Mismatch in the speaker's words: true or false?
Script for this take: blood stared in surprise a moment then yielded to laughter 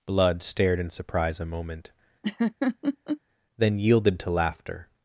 false